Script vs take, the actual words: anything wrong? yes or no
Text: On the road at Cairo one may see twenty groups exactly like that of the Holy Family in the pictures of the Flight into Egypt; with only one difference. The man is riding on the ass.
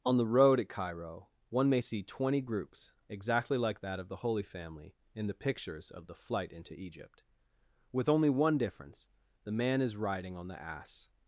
no